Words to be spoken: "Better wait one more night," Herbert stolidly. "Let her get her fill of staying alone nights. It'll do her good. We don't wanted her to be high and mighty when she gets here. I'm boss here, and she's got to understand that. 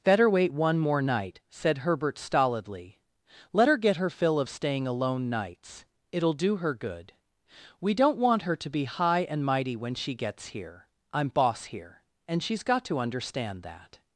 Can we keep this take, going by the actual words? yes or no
no